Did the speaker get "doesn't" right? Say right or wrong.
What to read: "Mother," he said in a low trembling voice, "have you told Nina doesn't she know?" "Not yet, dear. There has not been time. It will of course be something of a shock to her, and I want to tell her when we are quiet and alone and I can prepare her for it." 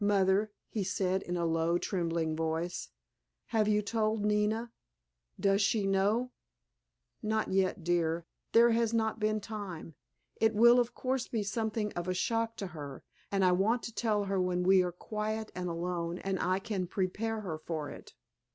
wrong